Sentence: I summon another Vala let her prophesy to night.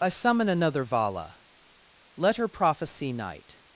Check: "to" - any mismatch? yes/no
yes